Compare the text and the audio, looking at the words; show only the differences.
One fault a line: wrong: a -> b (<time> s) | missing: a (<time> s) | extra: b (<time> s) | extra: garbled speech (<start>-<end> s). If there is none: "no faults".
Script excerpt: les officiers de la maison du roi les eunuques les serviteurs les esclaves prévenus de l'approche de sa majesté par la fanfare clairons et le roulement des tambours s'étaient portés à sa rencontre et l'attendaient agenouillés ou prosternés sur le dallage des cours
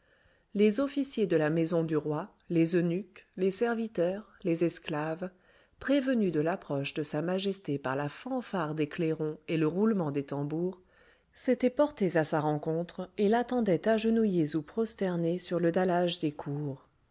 extra: des (8.8 s)